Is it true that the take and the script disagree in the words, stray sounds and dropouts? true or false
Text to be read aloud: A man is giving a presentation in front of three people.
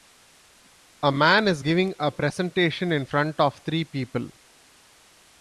false